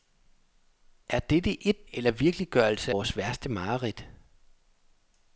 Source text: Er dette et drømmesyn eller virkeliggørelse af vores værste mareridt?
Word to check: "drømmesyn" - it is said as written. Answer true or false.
false